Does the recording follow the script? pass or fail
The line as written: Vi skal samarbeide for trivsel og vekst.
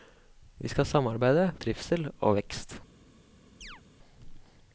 fail